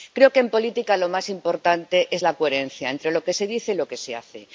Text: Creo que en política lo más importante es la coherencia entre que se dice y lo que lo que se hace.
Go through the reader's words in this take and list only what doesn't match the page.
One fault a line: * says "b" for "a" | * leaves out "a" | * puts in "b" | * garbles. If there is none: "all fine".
* puts in "lo"
* leaves out "lo que"